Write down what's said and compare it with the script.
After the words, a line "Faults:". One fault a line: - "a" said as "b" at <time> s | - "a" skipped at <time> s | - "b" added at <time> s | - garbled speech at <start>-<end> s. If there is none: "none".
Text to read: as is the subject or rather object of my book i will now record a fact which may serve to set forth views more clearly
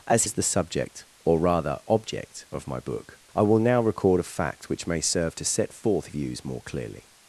as is the subject or rather object of my book i will now record a fact which may serve to set forth views more clearly
Faults:
none